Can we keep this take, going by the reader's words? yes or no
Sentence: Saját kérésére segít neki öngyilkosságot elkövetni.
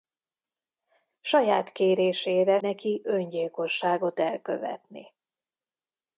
no